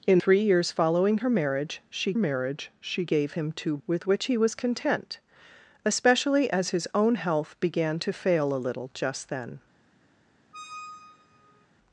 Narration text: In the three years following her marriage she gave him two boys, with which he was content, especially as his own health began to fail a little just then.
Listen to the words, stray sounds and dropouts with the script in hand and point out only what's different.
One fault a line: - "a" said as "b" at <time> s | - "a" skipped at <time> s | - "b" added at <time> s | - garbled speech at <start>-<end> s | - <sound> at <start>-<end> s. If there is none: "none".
- "the" skipped at 0.2 s
- "marriage she" added at 2.1 s
- "boys" skipped at 3.8 s
- squeak at 10.5-11.7 s